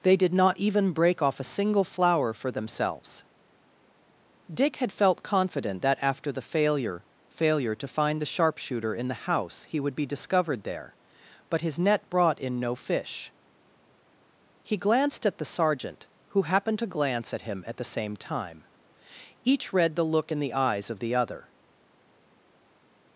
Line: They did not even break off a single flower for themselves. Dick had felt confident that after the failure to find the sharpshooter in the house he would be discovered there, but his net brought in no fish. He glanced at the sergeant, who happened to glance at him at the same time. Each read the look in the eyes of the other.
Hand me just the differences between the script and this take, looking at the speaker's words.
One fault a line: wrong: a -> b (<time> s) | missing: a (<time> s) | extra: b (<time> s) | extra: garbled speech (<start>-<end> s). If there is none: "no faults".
extra: failure (7.3 s)